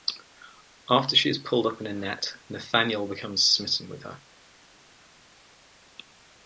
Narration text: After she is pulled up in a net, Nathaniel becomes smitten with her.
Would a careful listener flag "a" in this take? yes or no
no